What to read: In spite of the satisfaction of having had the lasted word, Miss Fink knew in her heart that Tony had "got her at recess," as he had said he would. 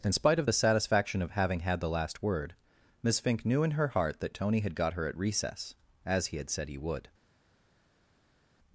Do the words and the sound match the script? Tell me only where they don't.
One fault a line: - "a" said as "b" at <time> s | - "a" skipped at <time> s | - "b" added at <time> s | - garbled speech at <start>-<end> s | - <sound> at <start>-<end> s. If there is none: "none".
- "lasted" said as "last" at 1.9 s